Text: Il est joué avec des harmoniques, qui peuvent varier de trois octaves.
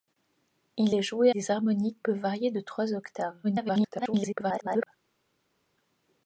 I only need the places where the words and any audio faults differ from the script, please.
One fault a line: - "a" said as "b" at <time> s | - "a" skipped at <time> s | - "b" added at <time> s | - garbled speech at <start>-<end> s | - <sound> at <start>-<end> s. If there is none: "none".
- "avec" skipped at 1.3 s
- "qui" skipped at 2.0 s
- garbled speech at 3.4-4.9 s